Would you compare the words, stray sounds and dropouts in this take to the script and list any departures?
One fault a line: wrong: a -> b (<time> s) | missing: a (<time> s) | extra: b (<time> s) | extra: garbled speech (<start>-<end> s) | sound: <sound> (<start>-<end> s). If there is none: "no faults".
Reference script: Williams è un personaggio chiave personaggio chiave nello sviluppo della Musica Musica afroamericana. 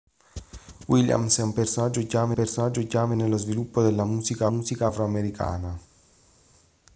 no faults